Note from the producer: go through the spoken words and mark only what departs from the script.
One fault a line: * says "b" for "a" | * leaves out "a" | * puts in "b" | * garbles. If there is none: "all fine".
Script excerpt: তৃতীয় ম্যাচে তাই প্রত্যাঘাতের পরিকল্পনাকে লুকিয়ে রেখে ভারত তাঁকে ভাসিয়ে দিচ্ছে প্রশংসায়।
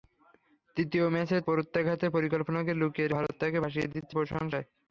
* leaves out "তাই"
* leaves out "রেখে"